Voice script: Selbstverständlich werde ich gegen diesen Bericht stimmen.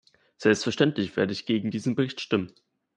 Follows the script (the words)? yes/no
yes